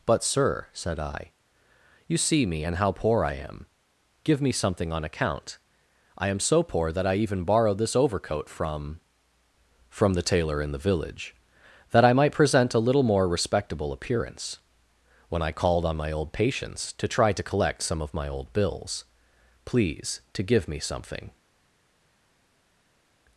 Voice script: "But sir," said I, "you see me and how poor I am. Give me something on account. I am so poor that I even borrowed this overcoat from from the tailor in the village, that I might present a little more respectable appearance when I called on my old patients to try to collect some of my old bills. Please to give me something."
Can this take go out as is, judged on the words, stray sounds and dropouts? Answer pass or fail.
pass